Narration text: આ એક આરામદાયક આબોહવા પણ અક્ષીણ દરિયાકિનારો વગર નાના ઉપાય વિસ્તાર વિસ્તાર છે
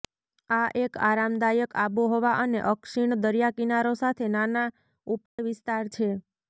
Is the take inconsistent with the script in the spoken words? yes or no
yes